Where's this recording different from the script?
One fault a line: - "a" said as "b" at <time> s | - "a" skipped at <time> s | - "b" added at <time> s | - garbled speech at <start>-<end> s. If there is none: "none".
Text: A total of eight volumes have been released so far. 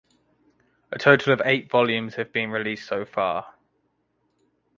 none